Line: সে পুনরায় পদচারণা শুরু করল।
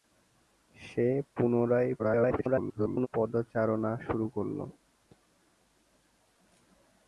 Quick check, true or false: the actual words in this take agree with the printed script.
false